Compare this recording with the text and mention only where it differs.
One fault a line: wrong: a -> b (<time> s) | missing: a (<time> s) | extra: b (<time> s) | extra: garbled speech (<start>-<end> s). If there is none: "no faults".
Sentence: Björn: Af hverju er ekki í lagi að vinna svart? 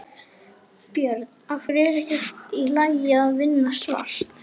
no faults